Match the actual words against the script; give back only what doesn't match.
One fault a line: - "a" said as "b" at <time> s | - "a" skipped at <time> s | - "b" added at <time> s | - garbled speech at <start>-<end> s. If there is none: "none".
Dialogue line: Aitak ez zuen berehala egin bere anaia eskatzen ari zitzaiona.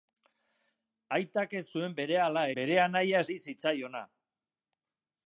- "egin" skipped at 2.5 s
- "eskatzen" skipped at 3.2 s